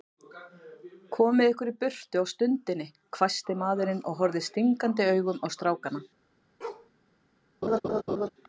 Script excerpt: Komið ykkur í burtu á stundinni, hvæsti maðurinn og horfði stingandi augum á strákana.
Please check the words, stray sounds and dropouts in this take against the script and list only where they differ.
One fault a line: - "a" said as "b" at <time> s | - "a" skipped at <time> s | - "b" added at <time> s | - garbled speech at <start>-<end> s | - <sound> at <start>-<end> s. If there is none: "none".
- bark at 6.6-6.9 s
- laugh at 7.6-8.3 s